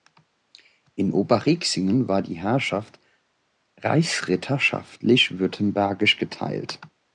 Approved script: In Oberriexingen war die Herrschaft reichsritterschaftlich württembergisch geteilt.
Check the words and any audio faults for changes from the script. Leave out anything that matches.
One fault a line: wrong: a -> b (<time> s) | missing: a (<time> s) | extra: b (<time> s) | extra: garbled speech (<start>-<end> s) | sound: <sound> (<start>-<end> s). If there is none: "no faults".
no faults